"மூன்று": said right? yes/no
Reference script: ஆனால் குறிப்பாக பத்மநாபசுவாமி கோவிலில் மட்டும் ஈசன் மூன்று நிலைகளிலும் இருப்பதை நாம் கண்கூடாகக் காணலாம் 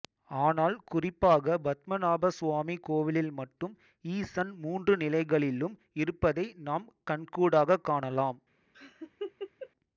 yes